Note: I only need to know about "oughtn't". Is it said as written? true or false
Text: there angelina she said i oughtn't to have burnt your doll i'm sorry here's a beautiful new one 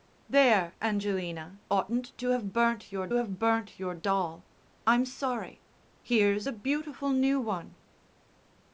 false